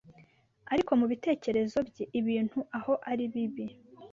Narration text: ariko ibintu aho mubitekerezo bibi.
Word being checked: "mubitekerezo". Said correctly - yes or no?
no